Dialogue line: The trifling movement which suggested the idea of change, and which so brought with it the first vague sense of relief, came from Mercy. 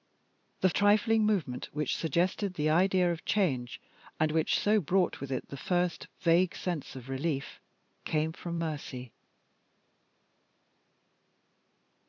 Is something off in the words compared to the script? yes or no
no